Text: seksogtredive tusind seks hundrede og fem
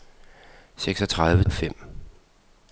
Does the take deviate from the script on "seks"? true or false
true